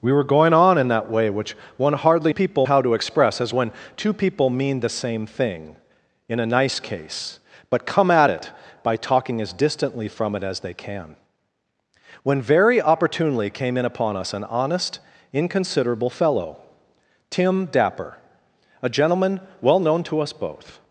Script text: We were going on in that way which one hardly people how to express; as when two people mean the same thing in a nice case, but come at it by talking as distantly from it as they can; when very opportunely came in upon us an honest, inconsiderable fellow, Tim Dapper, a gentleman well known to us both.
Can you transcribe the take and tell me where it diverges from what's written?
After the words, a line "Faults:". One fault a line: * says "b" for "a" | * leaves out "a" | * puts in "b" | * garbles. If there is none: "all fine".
We were going on in that way which one hardly people how to express; as when two people mean the same thing in a nice case, but come at it by talking as distantly from it as they can; when very opportunely came in upon us an honest, inconsiderable fellow, Tim Dapper, a gentleman well known to us both.
Faults:
all fine